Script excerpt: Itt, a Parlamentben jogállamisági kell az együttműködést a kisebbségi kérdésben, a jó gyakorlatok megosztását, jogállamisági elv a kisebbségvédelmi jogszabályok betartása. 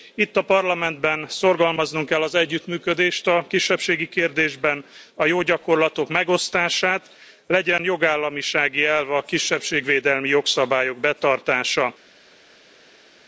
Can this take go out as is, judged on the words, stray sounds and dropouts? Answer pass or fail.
fail